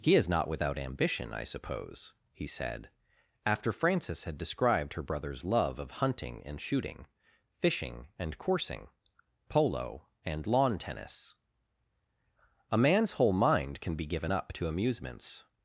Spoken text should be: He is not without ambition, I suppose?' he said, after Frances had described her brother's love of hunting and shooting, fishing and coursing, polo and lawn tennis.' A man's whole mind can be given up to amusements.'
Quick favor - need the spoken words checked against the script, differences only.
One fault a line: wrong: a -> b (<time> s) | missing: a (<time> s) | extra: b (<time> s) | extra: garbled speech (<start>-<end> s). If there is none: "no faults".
no faults